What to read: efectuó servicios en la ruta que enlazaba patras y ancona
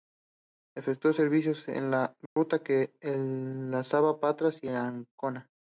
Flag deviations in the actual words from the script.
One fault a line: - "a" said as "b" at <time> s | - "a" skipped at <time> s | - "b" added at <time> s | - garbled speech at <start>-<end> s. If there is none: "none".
none